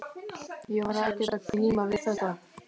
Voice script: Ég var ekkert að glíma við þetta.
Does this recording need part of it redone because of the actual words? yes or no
no